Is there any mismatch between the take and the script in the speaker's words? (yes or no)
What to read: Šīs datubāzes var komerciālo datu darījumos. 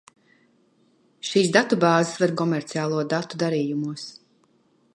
no